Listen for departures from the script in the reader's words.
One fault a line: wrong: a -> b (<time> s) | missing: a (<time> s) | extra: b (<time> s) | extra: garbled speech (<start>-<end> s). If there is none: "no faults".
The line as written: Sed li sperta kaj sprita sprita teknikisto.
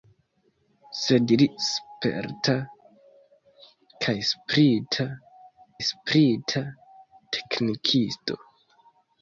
no faults